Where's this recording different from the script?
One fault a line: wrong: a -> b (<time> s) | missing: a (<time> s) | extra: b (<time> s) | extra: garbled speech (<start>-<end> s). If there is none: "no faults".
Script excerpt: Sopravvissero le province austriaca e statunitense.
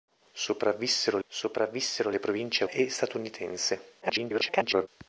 extra: sopravvissero (1.3 s)
missing: austriaca (2.6 s)
extra: garbled speech (4.0-4.9 s)